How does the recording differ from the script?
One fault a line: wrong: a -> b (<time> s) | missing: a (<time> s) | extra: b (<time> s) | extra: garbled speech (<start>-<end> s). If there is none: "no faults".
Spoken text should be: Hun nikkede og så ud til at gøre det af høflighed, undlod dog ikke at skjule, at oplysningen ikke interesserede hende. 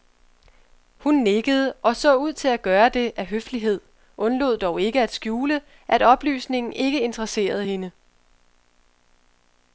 no faults